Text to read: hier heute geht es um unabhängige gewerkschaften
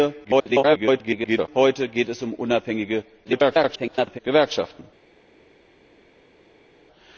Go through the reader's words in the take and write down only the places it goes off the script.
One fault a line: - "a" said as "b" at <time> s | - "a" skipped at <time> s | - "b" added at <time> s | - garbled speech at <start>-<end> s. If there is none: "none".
- garbled speech at 0.2-1.5 s
- garbled speech at 3.2-4.2 s